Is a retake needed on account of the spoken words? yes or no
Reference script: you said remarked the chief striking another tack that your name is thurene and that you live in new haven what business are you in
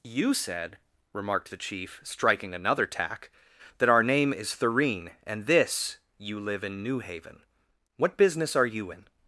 yes